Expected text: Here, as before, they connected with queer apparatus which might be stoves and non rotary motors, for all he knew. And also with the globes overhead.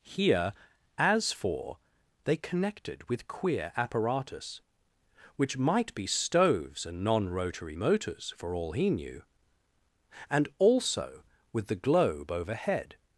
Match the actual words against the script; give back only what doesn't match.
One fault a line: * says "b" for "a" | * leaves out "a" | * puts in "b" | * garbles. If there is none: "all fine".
* says "for" for "before"
* says "globe" for "globes"